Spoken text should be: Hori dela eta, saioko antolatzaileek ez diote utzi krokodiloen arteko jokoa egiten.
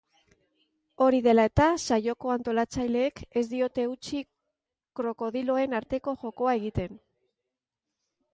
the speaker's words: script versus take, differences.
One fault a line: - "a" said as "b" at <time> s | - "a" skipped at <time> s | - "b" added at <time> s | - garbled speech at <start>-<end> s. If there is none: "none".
none